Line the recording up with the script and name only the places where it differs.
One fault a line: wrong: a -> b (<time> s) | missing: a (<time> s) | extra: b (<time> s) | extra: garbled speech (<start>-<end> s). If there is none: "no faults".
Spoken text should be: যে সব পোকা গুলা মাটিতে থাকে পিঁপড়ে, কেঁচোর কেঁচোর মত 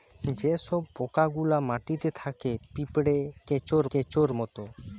no faults